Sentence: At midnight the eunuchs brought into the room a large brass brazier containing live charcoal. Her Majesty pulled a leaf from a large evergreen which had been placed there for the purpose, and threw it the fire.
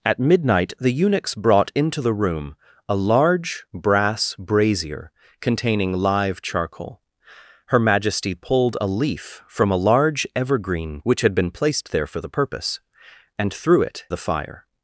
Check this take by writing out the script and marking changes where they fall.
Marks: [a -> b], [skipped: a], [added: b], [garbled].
At midnight the eunuchs brought into the room a large brass brazier containing live charcoal. Her Majesty pulled a leaf from a large evergreen which had been placed there for the purpose, and threw it the fire.